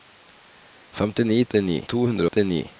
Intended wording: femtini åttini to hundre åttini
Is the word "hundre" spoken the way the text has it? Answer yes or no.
yes